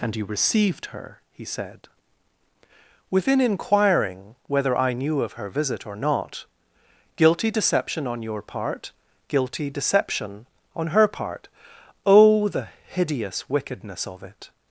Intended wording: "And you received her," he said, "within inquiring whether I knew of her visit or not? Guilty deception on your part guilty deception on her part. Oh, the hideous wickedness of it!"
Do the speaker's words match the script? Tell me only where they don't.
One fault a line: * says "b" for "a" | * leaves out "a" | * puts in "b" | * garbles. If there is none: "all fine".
all fine